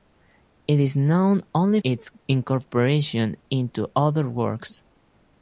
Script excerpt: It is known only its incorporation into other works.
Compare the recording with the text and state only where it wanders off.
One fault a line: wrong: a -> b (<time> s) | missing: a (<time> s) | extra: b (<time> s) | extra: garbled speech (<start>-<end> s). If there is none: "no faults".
no faults